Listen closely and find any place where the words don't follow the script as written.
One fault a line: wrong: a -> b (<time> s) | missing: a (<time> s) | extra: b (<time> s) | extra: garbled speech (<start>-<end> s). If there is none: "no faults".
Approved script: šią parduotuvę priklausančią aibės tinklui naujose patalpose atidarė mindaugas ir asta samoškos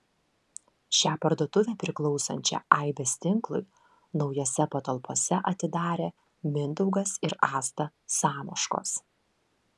no faults